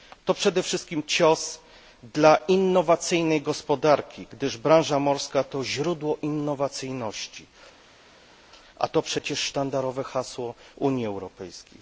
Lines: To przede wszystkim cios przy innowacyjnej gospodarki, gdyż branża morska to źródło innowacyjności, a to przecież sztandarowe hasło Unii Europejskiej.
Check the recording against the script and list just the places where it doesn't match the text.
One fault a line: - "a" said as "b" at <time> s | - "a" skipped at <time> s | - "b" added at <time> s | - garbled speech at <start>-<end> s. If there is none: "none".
- "przy" said as "dla" at 2.0 s